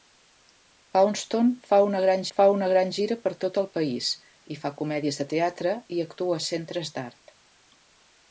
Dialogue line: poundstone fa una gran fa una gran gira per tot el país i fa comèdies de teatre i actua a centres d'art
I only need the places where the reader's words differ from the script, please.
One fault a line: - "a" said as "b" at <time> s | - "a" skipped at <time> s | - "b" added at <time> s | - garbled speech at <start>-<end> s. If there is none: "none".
none